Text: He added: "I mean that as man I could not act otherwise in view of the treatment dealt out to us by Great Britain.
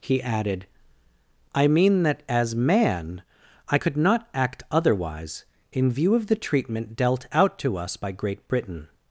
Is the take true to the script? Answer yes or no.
yes